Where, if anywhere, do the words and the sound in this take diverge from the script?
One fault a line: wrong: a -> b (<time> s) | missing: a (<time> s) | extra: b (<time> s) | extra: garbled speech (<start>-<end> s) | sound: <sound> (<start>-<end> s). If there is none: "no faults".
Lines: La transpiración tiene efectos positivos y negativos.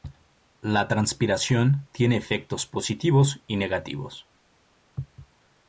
no faults